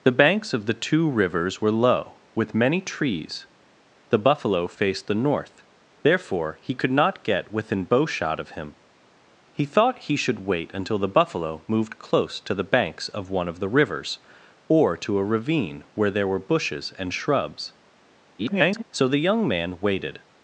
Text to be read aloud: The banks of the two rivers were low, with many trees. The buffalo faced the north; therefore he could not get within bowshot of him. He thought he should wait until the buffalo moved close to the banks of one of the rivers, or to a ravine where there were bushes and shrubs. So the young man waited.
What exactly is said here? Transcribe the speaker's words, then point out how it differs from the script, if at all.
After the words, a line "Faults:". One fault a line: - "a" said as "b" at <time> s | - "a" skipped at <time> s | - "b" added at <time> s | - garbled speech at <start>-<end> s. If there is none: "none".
The banks of the two rivers were low, with many trees. The buffalo faced the north; therefore he could not get within bowshot of him. He thought he should wait until the buffalo moved close to the banks of one of the rivers, or to a ravine where there were bushes and shrubs. [garbled] So the young man waited.
Faults:
- garbled speech at 18.4-18.8 s